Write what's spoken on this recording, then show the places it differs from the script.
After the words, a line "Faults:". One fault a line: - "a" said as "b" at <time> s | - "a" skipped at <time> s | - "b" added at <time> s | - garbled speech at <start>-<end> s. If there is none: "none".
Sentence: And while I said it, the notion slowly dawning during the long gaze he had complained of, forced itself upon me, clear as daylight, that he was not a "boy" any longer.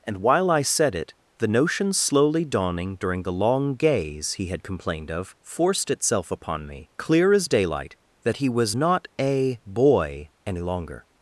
And while I said it, the notion slowly dawning during the long gaze he had complained of, forced itself upon me, clear as daylight, that he was not a "boy" any longer.
Faults:
none